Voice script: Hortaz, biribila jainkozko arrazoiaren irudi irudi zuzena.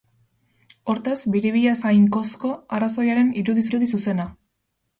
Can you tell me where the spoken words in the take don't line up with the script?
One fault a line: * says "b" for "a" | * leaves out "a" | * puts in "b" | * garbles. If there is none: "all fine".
all fine